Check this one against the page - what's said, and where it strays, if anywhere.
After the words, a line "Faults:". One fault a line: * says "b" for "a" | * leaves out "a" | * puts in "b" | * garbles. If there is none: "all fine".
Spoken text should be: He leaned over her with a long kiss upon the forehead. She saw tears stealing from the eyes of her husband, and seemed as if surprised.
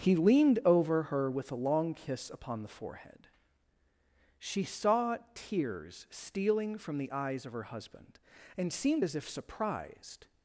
He leaned over her with a long kiss upon the forehead. She saw tears stealing from the eyes of her husband, and seemed as if surprised.
Faults:
all fine